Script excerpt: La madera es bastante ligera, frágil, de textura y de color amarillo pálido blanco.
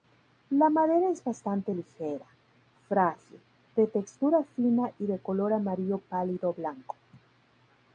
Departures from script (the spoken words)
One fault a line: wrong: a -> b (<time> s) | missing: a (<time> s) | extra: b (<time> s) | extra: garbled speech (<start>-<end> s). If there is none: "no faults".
extra: fina (4.4 s)